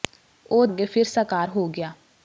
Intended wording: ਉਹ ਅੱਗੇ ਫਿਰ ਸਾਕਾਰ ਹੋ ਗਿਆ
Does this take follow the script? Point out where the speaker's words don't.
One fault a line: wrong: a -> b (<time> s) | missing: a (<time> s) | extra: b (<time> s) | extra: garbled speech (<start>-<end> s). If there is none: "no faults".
no faults